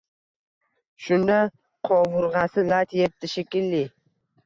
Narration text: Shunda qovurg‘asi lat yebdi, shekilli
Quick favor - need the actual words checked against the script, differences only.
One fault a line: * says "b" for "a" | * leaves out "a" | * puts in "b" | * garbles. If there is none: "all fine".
all fine